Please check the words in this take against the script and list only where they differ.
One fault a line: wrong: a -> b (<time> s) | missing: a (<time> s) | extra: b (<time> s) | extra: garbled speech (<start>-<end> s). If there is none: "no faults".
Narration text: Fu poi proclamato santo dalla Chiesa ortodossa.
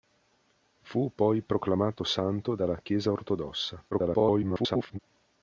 extra: garbled speech (3.9-5.0 s)